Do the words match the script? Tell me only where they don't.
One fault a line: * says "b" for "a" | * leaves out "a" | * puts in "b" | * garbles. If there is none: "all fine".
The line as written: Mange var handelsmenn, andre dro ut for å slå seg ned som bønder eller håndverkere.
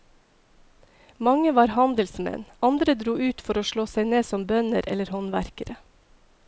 all fine